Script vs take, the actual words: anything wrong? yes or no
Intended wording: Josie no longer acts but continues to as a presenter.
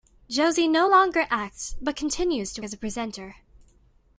no